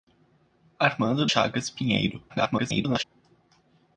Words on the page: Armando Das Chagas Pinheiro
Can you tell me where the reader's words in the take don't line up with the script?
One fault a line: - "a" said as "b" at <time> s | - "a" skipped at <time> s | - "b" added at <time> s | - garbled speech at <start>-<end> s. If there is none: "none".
- "Das" skipped at 1.3 s
- garbled speech at 2.3-3.0 s